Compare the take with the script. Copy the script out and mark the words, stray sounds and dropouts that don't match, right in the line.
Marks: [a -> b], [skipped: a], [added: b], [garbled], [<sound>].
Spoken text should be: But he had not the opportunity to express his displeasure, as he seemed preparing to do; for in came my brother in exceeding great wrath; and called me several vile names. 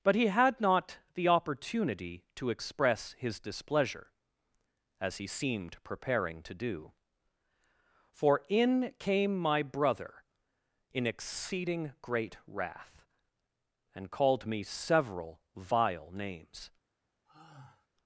But he had not the opportunity to express his displeasure, as he seemed preparing to do; for in came my brother in exceeding great wrath; and called me several vile names. [sigh]